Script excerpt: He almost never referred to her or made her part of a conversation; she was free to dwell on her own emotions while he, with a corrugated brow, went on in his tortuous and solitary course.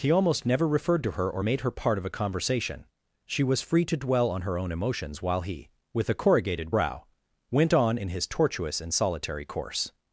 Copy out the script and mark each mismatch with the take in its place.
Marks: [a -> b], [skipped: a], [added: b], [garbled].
He almost never referred to her or made her part of a conversation; she was free to dwell on her own emotions while he, with a corrugated brow, went on in his tortuous and solitary course.